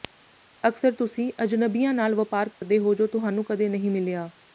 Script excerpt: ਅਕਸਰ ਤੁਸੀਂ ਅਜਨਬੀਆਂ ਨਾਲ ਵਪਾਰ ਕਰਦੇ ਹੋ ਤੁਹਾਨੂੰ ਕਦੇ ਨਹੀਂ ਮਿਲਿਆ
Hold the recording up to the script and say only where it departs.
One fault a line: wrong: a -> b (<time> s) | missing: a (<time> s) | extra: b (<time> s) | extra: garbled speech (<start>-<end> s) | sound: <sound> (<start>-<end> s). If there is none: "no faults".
sound: dropout (2.5-2.6 s)
extra: ਜੋ (2.9 s)